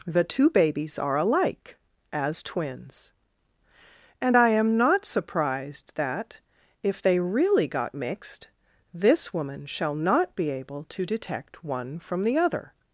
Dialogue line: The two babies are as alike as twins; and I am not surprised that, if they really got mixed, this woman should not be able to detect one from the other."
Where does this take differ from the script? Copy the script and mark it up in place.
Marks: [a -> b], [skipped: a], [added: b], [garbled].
The two babies are [skipped: as] alike as twins; and I am not surprised that, if they really got mixed, this woman [should -> shall] not be able to detect one from the other."